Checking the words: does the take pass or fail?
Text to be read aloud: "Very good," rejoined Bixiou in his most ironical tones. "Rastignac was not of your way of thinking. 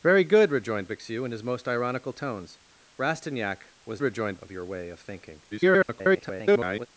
fail